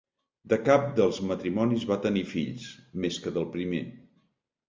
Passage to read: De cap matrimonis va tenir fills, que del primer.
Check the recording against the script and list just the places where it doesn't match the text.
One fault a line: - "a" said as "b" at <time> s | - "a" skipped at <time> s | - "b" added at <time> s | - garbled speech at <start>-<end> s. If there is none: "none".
- "dels" added at 1.0 s
- "més" added at 3.0 s